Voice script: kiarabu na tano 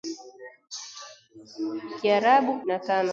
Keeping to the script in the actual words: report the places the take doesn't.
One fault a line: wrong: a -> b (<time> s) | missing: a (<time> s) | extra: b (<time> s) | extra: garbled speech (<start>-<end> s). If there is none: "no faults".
no faults